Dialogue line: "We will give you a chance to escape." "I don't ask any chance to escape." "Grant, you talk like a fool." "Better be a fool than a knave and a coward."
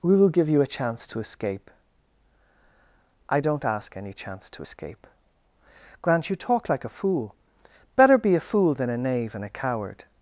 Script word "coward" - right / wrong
right